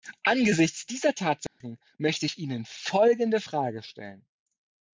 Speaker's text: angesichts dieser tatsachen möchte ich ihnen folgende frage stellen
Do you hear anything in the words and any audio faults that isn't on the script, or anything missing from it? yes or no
yes